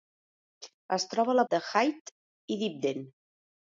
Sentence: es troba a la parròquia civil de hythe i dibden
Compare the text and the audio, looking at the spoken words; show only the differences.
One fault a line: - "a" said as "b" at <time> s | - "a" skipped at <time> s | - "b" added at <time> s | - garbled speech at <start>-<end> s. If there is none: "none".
- "parròquia civil" skipped at 1.4 s